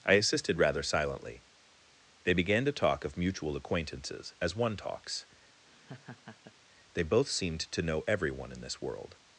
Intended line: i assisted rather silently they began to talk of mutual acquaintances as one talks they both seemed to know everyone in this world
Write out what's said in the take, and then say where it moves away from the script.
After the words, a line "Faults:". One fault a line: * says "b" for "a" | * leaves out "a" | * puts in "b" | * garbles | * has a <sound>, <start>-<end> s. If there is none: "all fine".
i assisted rather silently they began to talk of mutual acquaintances as one talks they both seemed to know everyone in this world
Faults:
* has a laugh, 5.7-6.5 s